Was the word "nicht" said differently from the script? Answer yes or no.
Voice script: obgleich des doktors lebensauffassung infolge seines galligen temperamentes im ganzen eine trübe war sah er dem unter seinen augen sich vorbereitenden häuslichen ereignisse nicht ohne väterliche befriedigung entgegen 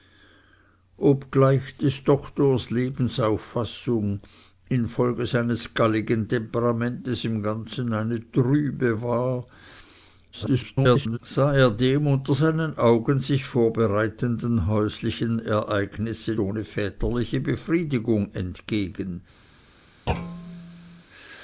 yes